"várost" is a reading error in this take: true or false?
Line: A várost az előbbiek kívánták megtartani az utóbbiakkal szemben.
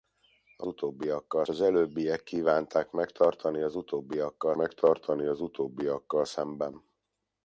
true